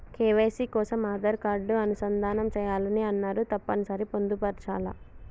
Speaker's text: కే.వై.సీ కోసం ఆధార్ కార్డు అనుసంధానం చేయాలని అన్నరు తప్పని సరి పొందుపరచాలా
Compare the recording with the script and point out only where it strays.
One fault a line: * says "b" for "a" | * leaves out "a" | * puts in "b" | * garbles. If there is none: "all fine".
all fine